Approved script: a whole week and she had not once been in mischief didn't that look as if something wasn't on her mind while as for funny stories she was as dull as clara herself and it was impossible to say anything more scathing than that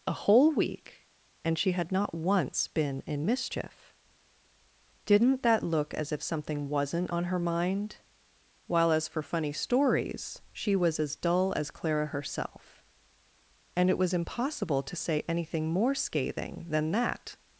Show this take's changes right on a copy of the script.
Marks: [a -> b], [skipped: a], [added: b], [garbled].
a whole week and she had not once been in mischief didn't that look as if something wasn't on her mind while as for funny stories she was as dull as clara herself and it was impossible to say anything more scathing than that